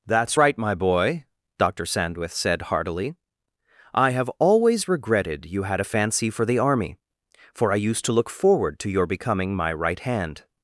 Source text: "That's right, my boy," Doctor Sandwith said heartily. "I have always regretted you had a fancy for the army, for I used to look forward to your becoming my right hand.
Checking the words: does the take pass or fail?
pass